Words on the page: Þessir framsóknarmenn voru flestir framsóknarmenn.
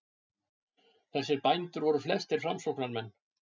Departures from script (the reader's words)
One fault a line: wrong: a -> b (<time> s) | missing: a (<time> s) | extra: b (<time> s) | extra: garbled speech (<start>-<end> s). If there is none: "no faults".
wrong: framsóknarmenn -> bændur (1.5 s)